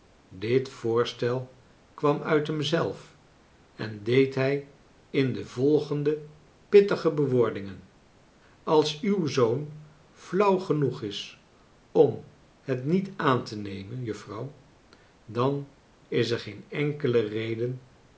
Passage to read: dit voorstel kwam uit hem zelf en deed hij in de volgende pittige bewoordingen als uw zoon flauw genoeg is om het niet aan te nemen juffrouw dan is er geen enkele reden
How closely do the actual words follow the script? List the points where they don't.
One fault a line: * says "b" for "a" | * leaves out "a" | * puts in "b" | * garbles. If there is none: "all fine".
all fine